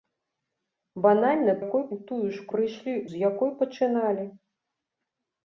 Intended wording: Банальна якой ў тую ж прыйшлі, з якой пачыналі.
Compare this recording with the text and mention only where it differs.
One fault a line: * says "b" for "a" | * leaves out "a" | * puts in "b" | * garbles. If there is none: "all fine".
all fine